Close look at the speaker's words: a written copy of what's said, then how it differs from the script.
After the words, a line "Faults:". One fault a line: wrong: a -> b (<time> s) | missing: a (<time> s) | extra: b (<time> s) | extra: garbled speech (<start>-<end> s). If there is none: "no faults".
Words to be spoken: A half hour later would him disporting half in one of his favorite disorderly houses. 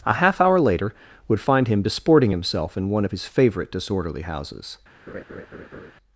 A half hour later would find him disporting himself in one of his favorite disorderly houses.
Faults:
extra: find (1.4 s)
wrong: half -> himself (2.3 s)